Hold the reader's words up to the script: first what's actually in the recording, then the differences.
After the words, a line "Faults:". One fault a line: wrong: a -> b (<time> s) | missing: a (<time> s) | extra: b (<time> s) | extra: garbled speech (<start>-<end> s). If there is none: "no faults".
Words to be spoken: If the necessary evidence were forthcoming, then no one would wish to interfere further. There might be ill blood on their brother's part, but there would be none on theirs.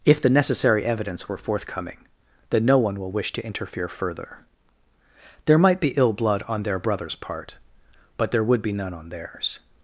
If the necessary evidence were forthcoming, then no one will wish to interfere further. There might be ill blood on their brother's part, but there would be none on theirs.
Faults:
wrong: would -> will (3.0 s)